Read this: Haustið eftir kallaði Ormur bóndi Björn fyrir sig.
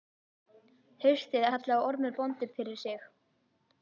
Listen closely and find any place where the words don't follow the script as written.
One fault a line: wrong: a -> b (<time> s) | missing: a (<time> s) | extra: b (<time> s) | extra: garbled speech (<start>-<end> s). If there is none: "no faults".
missing: eftir (1.4 s)
missing: Björn (2.5 s)